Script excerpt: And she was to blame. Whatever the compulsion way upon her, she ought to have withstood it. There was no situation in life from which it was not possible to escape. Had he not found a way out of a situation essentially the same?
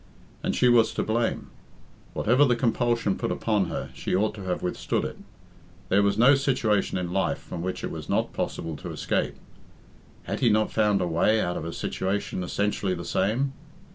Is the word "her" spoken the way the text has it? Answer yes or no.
yes